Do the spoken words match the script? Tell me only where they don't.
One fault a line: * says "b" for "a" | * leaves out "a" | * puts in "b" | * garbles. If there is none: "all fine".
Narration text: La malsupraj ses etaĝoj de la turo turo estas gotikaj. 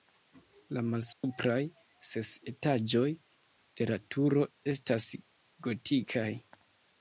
* leaves out "turo"